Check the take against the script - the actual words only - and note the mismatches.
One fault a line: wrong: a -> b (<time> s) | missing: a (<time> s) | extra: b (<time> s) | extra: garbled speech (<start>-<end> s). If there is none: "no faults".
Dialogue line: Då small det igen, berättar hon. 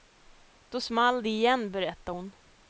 no faults